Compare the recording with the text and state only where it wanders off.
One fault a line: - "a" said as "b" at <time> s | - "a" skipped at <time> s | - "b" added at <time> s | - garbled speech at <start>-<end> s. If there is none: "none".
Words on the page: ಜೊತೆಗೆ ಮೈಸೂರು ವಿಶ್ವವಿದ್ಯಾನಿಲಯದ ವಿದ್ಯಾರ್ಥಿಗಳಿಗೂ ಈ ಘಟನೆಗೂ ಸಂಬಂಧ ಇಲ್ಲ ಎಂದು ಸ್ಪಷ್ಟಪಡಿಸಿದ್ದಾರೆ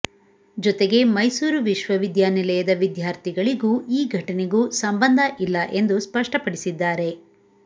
none